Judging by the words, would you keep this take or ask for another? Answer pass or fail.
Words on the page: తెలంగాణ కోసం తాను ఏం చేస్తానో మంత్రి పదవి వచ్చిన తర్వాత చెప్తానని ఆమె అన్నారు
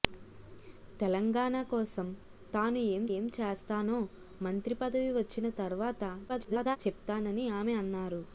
fail